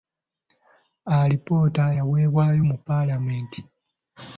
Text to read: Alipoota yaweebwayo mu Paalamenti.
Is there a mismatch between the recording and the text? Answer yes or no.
no